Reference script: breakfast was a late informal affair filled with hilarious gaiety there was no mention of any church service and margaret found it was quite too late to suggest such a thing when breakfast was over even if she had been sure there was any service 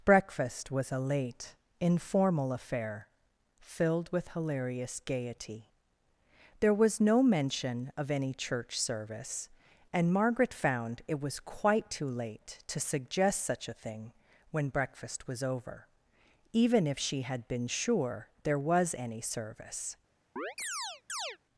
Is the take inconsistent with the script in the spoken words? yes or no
no